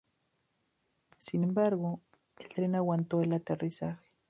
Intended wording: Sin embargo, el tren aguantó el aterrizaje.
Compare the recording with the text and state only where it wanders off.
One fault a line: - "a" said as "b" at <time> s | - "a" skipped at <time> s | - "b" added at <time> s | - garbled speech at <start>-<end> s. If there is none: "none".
none